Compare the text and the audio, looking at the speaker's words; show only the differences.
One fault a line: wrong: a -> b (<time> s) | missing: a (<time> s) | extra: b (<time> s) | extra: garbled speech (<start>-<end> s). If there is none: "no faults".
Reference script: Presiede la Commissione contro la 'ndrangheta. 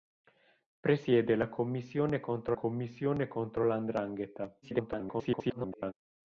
extra: Commissione contro (2.5 s)
extra: garbled speech (4.6-5.9 s)